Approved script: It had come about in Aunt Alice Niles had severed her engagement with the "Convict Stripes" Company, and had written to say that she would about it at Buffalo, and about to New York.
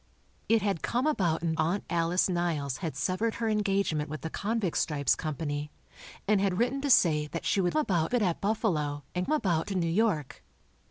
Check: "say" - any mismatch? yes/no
no